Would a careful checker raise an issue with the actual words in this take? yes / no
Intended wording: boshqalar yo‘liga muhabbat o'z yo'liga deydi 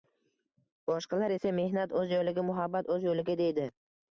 yes